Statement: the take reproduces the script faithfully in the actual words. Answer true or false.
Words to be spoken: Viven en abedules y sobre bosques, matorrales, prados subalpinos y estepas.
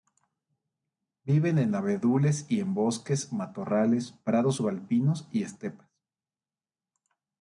false